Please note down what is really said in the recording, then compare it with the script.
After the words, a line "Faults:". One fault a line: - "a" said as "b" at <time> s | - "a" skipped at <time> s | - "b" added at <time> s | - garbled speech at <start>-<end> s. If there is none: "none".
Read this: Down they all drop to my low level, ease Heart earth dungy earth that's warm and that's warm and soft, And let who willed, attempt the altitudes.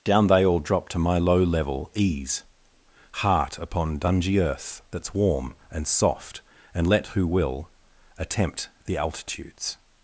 Down they all drop to my low level, ease Heart upon dungy earth that's warm and soft, And let who will, attempt the altitudes.
Faults:
- "earth" said as "upon" at 3.6 s
- "that's warm and" skipped at 5.9 s
- "willed" said as "will" at 7.3 s